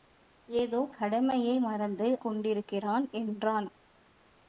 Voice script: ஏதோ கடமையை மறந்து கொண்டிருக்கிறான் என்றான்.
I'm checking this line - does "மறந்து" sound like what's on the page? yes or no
yes